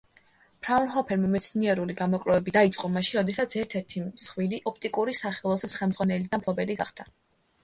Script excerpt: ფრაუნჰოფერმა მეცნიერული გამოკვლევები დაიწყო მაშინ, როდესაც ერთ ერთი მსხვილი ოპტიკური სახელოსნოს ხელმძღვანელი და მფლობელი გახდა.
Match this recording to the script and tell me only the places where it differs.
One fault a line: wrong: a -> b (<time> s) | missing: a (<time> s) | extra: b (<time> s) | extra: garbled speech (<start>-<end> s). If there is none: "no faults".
no faults